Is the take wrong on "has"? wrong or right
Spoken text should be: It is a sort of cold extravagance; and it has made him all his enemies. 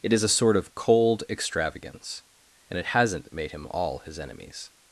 wrong